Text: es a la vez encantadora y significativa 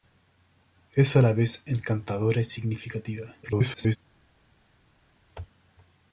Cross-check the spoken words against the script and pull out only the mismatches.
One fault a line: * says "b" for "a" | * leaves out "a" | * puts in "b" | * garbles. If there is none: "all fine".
* garbles